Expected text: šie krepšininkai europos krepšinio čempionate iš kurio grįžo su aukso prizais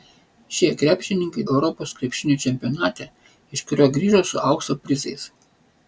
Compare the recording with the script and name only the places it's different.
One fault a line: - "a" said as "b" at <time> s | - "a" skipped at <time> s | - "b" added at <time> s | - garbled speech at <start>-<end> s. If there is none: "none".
none